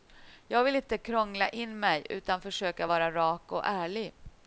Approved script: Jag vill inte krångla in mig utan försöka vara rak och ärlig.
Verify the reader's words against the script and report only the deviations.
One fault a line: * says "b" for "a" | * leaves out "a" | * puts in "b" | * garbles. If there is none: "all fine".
all fine